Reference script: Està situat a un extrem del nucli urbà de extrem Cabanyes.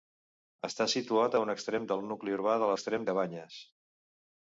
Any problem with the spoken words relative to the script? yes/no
no